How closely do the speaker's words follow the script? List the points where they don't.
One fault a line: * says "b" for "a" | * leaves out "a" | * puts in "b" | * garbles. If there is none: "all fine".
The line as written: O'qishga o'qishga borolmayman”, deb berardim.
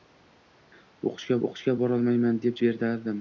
all fine